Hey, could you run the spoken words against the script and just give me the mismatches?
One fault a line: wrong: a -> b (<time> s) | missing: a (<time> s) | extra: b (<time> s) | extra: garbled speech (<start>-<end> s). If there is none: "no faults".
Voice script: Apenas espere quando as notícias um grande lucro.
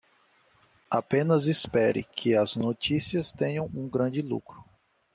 wrong: quando -> que (2.0 s)
extra: tenham (3.3 s)